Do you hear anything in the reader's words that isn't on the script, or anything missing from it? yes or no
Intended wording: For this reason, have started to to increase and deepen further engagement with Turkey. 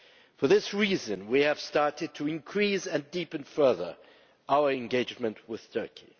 yes